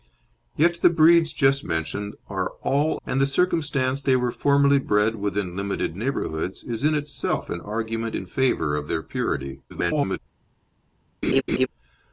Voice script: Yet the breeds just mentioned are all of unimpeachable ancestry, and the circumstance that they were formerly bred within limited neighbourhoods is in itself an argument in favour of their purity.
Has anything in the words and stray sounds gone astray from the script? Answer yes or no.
yes